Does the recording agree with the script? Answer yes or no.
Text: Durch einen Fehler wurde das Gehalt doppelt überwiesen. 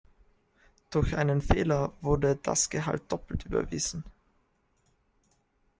yes